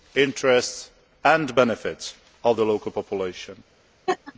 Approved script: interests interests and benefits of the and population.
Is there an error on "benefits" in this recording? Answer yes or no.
no